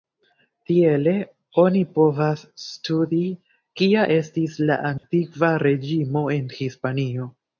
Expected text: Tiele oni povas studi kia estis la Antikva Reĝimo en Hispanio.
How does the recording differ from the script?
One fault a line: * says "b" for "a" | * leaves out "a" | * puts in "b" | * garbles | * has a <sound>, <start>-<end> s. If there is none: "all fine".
* has a dropout, 5.0-5.0 s